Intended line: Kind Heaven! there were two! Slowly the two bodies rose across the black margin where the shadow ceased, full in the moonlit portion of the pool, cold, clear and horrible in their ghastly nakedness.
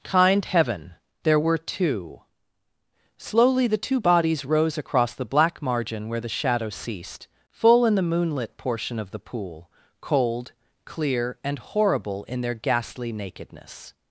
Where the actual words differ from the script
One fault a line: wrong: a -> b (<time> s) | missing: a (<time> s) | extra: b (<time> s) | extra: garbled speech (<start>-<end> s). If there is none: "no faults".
no faults